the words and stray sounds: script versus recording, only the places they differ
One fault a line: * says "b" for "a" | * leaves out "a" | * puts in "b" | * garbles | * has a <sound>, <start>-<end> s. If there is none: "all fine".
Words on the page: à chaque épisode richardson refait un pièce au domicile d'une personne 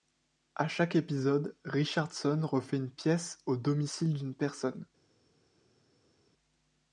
* says "une" for "un"